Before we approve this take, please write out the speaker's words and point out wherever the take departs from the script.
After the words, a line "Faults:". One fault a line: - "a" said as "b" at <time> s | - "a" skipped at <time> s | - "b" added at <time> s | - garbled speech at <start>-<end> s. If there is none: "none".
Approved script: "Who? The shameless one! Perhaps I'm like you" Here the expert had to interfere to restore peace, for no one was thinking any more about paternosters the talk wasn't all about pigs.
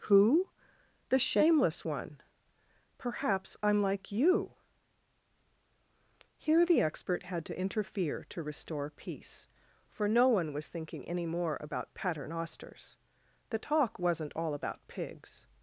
"Who? The shameless one! Perhaps I'm like you" Here the expert had to interfere to restore peace, for no one was thinking any more about paternosters the talk wasn't all about pigs.
Faults:
none